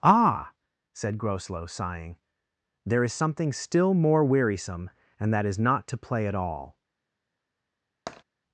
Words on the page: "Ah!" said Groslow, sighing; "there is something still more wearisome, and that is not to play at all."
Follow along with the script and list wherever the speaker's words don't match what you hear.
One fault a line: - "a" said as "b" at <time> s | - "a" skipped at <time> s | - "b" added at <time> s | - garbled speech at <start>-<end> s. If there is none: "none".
none